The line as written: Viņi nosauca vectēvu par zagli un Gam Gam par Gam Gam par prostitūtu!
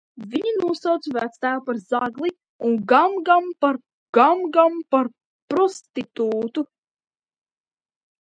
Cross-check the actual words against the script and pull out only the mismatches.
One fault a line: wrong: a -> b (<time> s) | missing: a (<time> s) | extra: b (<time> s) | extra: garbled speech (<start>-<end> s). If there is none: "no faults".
no faults